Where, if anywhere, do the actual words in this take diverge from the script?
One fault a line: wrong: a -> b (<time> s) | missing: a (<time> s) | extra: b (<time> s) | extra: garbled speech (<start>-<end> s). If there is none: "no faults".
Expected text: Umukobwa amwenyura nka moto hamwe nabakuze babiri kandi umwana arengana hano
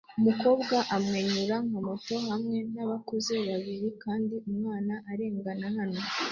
no faults